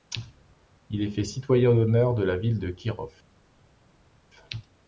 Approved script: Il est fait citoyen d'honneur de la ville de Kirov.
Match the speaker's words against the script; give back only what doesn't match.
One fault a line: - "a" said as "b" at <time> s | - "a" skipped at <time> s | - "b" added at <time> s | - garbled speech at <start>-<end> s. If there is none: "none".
none